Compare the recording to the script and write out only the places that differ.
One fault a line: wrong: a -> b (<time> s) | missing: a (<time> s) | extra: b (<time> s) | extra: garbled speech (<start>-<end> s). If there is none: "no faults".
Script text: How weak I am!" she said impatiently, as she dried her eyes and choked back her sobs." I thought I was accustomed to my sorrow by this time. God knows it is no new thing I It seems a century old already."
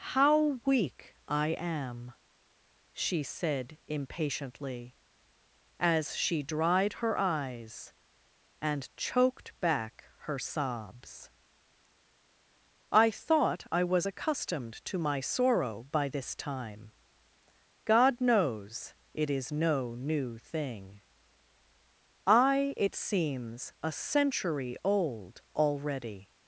no faults